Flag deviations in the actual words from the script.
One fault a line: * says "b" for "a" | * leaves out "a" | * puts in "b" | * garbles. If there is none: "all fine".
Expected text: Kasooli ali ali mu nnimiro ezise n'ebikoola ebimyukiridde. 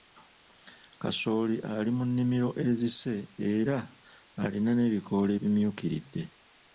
* leaves out "ali"
* puts in "era alina"